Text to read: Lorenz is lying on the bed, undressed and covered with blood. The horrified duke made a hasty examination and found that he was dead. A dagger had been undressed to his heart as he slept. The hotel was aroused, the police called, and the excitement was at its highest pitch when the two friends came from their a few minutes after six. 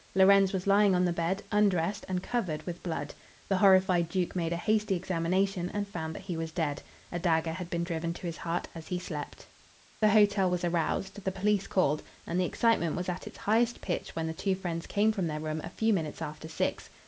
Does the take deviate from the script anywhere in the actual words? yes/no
yes